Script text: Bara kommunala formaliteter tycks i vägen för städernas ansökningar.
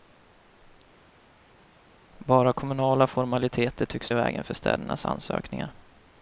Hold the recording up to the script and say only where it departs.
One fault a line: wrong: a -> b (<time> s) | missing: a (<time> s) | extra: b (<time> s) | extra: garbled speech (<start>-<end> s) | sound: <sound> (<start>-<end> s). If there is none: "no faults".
no faults